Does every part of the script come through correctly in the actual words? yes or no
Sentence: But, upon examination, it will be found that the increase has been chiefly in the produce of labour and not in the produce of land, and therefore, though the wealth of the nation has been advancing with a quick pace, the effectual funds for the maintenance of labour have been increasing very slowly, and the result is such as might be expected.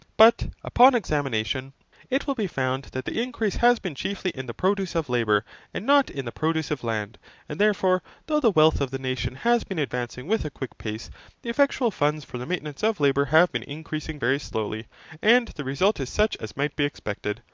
yes